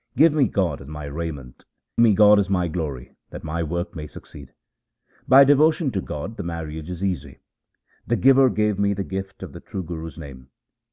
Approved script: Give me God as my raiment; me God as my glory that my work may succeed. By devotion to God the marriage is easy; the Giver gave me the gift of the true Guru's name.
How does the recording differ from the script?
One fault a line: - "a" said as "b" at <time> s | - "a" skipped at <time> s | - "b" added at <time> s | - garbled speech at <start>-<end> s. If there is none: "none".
none